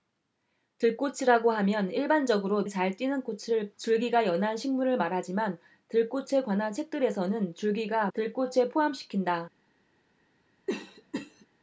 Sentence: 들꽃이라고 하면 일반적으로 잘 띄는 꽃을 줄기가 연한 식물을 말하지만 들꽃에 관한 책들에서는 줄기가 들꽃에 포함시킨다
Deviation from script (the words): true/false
false